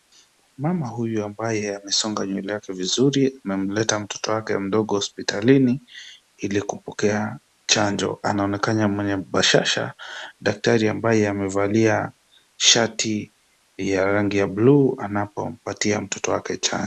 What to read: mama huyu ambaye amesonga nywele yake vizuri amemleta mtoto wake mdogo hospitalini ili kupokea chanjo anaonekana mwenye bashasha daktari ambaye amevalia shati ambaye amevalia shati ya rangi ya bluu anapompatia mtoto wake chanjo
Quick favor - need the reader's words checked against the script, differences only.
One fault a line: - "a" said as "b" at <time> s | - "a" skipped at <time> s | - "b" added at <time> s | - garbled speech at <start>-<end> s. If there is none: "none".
- "ambaye amevalia shati" skipped at 13.3 s